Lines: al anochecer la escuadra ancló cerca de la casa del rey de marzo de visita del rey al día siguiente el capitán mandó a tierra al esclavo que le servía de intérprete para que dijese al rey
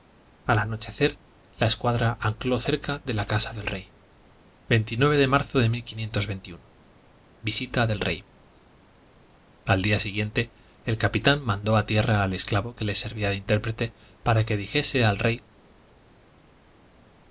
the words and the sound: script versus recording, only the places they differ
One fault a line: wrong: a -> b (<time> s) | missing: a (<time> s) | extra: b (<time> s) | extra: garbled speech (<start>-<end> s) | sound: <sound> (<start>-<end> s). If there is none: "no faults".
no faults